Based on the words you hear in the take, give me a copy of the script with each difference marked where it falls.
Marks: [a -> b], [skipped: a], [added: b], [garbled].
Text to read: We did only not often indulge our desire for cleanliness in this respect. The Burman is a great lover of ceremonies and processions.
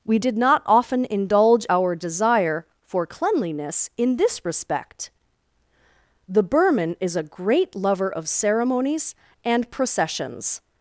We did [skipped: only] not often indulge our desire for cleanliness in this respect. The Burman is a great lover of ceremonies and processions.